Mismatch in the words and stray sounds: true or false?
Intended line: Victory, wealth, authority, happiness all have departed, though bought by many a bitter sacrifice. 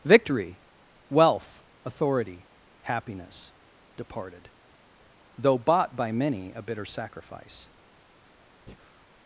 true